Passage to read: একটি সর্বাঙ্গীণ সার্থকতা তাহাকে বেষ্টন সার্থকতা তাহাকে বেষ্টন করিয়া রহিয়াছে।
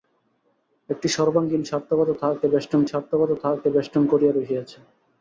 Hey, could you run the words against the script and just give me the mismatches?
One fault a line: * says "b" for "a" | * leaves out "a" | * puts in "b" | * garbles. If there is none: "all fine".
all fine